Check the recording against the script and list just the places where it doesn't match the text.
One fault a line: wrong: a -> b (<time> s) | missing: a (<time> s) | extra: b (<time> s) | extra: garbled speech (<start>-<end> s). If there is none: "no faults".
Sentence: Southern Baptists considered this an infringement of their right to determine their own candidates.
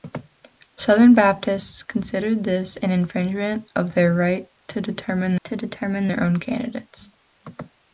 extra: to determine (5.4 s)